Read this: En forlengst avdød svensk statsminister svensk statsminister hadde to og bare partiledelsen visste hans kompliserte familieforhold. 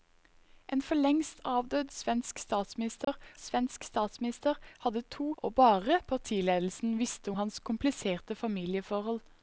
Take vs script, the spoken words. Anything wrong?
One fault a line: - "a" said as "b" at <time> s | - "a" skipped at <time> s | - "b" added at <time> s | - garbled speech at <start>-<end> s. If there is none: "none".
none